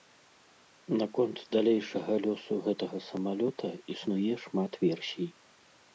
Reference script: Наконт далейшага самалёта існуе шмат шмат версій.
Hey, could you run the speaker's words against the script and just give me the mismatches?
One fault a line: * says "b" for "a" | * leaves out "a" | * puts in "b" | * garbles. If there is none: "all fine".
* puts in "лёсу гэтага"
* leaves out "шмат"